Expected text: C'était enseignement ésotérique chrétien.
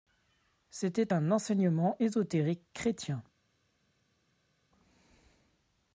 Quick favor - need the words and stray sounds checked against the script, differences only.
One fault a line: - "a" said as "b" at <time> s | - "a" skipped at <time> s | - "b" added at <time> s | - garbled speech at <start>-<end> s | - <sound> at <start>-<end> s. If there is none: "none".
- "un" added at 1.1 s